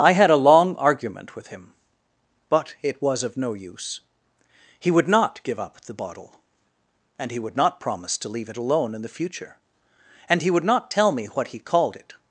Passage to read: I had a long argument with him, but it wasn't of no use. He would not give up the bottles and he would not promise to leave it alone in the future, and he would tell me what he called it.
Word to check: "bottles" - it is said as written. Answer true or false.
false